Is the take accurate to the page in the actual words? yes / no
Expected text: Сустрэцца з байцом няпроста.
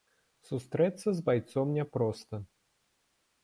yes